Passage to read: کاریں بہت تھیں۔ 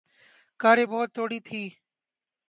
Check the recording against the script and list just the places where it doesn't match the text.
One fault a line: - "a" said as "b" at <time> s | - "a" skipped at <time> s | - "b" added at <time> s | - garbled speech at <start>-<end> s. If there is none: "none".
- "تھوڑی" added at 1.1 s